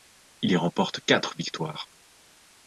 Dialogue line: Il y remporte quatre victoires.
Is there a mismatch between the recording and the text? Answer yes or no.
no